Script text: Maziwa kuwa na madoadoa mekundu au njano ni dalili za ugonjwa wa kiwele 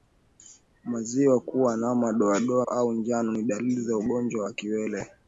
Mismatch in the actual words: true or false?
true